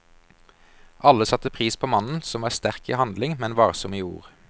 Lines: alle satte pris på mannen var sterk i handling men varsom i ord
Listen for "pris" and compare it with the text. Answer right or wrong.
right